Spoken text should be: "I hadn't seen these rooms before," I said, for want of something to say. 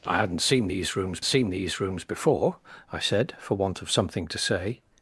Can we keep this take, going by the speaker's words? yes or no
no